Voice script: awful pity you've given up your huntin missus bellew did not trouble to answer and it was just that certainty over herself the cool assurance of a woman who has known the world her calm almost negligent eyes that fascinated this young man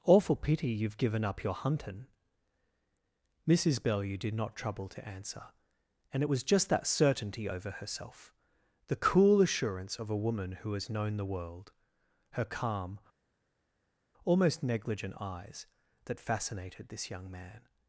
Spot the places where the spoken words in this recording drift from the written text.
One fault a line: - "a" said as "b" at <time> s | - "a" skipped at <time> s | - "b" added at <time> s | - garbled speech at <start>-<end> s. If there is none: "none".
none